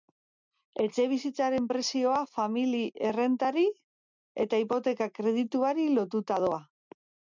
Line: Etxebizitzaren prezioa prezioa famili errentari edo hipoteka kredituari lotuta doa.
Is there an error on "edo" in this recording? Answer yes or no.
yes